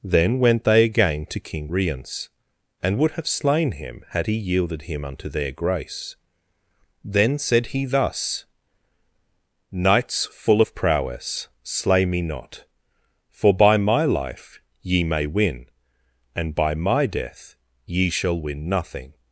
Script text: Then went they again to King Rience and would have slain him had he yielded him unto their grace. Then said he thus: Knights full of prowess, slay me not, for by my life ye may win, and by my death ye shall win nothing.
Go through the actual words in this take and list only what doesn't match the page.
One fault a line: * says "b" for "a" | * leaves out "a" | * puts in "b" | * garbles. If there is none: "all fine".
all fine